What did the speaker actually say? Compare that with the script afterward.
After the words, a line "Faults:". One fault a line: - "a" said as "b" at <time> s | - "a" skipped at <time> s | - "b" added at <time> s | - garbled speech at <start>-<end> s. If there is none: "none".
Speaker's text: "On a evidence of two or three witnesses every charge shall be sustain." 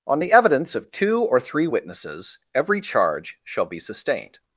"On the evidence of two or three witnesses every charge shall be sustained."
Faults:
- "a" said as "the" at 0.2 s
- "sustain" said as "sustained" at 3.8 s